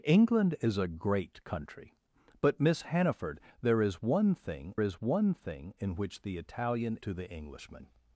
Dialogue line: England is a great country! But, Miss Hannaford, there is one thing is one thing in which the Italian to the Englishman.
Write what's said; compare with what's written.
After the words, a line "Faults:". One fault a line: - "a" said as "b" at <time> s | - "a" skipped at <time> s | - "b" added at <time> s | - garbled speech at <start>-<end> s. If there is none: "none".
England is a great country! But, Miss Hannaford, there is one thing is one thing in which the Italian to the Englishman.
Faults:
none